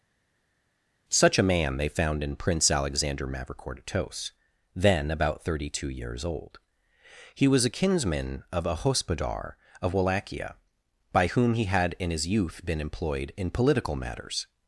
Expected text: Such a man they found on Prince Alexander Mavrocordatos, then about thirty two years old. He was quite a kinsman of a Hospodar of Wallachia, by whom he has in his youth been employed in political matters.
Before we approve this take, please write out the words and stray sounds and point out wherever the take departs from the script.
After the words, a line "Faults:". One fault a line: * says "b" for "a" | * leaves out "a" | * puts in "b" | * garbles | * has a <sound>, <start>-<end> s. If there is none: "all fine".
Such a man they found in Prince Alexander Mavrocordatos, then about thirty two years old. He was a kinsman of a Hospodar of Wallachia, by whom he had in his youth been employed in political matters.
Faults:
* says "in" for "on"
* leaves out "quite"
* says "had" for "has"